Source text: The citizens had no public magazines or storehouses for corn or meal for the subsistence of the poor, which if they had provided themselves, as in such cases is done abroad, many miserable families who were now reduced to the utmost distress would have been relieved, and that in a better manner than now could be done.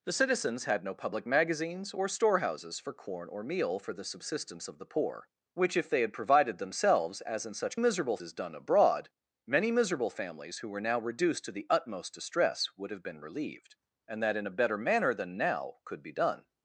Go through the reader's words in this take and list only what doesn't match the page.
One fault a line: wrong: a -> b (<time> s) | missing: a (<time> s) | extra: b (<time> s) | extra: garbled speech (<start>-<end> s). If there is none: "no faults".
wrong: cases -> miserable (7.8 s)